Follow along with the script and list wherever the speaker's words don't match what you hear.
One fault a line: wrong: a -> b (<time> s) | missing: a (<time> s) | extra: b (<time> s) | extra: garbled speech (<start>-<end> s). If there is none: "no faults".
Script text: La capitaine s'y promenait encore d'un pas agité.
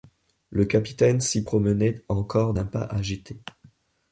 wrong: La -> Le (0.5 s)